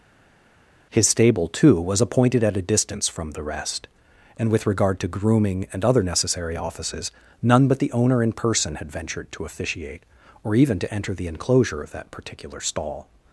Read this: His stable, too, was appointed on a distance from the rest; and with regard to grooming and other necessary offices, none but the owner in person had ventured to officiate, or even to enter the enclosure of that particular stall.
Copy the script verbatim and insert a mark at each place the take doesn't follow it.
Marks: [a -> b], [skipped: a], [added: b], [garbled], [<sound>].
His stable, too, was appointed [on -> at] a distance from the rest; and with regard to grooming and other necessary offices, none but the owner in person had ventured to officiate, or even to enter the enclosure of that particular stall.